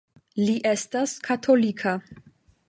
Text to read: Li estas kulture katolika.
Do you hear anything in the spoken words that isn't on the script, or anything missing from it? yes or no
yes